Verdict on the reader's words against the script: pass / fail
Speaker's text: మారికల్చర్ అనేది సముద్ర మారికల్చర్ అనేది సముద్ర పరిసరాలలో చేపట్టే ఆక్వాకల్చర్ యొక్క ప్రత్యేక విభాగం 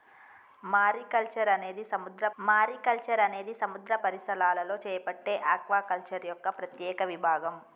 pass